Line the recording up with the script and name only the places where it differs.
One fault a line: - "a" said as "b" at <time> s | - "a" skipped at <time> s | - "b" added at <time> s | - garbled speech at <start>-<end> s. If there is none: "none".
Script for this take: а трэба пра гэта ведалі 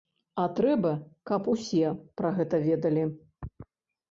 - "каб усе" added at 1.3 s